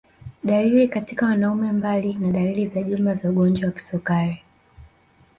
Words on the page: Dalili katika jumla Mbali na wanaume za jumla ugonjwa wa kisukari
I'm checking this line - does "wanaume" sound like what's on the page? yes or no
no